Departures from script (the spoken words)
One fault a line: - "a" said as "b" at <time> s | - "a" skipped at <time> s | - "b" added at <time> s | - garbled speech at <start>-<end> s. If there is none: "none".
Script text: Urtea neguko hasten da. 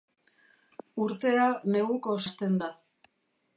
none